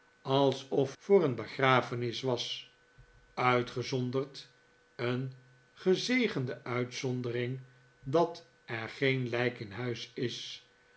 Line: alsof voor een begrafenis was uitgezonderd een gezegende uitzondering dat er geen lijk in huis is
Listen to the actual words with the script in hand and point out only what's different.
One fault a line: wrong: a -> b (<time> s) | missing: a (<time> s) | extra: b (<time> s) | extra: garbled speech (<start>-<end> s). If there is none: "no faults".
no faults